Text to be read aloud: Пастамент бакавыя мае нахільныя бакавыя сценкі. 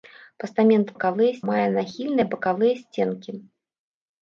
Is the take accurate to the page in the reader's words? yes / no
yes